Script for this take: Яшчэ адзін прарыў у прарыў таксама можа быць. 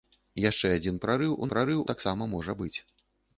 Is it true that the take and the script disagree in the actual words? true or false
false